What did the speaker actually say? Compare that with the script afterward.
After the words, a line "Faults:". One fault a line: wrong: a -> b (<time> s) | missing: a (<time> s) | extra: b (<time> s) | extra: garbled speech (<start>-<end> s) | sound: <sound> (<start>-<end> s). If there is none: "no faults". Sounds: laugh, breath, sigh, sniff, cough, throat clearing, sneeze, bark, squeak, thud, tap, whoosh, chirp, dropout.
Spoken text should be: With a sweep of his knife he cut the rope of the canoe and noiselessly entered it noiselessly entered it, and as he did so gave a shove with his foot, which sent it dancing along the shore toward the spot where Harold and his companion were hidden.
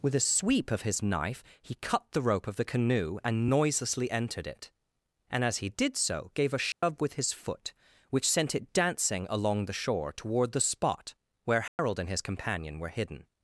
With a sweep of his knife he cut the rope of the canoe and noiselessly entered it, and as he did so gave a shove with his foot, which sent it dancing along the shore toward the spot where Harold and his companion were hidden.
Faults:
missing: noiselessly entered it (4.7 s)
sound: dropout (6.7-6.8 s)
sound: dropout (11.7-11.8 s)